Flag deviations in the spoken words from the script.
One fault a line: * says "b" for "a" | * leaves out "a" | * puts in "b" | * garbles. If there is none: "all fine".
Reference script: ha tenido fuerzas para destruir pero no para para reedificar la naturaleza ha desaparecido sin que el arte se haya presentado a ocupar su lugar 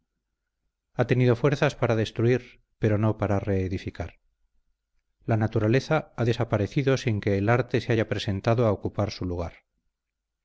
* leaves out "para"